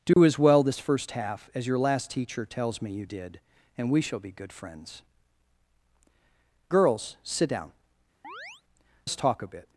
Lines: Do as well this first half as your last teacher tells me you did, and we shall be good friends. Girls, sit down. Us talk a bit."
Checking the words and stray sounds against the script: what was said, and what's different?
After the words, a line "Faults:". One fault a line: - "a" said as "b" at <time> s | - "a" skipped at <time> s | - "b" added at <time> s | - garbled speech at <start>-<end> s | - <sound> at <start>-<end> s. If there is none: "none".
Do as well this first half as your last teacher tells me you did, and we shall be good friends. Girls, sit down. Us talk a bit."
Faults:
- dropout at 0.1-0.2 s
- chirp at 8.2-8.6 s